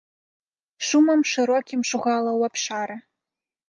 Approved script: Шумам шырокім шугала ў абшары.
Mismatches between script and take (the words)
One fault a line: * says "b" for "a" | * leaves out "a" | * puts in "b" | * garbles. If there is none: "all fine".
all fine